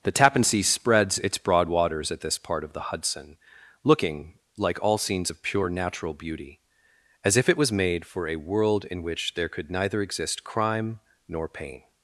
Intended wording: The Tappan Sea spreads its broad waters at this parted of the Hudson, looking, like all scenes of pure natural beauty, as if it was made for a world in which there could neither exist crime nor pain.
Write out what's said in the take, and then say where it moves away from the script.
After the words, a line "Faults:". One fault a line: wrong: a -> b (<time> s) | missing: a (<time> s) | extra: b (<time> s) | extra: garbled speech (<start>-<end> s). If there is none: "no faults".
The Tappan Sea spreads its broad waters at this part of the Hudson, looking, like all scenes of pure natural beauty, as if it was made for a world in which there could neither exist crime nor pain.
Faults:
wrong: parted -> part (2.4 s)